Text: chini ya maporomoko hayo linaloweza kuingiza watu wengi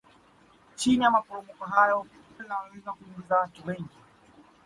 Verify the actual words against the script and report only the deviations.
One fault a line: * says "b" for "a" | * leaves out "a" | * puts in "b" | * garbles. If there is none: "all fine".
all fine